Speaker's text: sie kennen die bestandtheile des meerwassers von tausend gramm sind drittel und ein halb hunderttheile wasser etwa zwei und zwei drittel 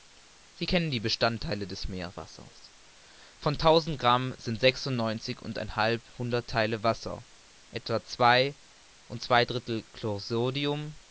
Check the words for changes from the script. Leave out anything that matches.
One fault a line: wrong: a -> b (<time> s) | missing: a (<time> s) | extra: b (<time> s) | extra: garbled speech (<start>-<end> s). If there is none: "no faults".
wrong: drittel -> sechsundneunzig (4.6 s)